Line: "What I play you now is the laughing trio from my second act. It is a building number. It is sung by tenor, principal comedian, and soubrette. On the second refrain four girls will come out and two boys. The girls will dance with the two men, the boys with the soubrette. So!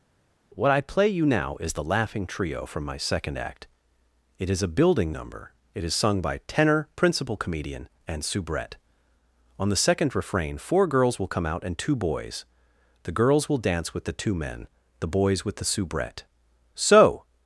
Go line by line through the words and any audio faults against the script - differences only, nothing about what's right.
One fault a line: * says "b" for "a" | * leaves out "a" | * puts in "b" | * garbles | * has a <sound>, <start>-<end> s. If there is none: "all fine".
all fine